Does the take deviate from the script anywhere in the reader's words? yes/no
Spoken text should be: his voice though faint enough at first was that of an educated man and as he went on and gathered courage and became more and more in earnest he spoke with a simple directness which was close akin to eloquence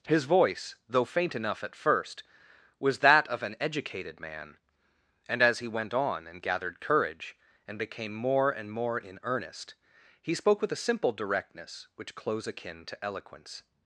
yes